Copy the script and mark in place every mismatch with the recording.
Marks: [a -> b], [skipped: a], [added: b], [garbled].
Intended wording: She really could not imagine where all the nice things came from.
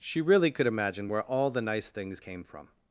She really could [skipped: not] imagine where all the nice things came from.